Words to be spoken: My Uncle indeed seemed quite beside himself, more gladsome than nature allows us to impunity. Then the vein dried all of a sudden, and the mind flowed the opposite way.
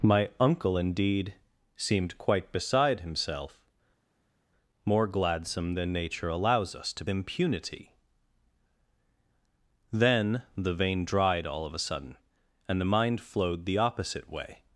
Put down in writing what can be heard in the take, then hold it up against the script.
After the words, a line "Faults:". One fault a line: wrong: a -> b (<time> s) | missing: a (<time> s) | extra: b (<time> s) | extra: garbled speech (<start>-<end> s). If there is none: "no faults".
My Uncle indeed seemed quite beside himself, more gladsome than nature allows us to impunity. Then the vein dried all of a sudden, and the mind flowed the opposite way.
Faults:
no faults